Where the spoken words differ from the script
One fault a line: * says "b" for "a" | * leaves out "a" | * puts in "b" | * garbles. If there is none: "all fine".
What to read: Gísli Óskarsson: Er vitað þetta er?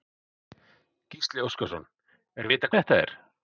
all fine